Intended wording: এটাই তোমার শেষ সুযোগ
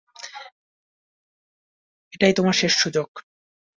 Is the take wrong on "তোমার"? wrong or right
right